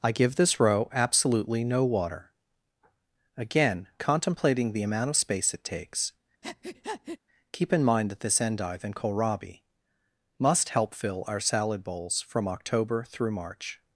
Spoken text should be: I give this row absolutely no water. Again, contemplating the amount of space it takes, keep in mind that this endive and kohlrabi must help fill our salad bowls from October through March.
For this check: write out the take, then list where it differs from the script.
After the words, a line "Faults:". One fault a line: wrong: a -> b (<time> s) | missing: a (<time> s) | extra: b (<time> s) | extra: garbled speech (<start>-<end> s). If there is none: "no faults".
I give this row absolutely no water. Again, contemplating the amount of space it takes, keep in mind that this endive and kohlrabi must help fill our salad bowls from October through March.
Faults:
no faults